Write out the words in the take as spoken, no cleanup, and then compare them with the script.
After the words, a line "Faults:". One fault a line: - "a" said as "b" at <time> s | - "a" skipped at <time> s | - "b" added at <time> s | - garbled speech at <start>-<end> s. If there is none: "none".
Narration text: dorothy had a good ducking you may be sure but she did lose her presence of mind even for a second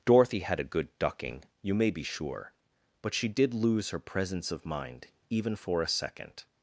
dorothy had a good ducking you may be sure but she did lose her presence of mind even for a second
Faults:
none